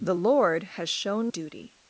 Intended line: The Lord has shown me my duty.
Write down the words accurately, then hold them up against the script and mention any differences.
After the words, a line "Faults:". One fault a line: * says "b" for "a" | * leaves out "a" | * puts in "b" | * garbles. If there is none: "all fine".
The Lord has shown duty.
Faults:
* leaves out "me my"